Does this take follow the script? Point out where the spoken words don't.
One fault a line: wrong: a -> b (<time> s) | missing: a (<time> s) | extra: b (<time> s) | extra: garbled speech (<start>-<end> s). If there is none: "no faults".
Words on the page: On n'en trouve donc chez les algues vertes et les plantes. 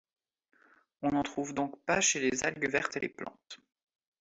extra: pas (1.9 s)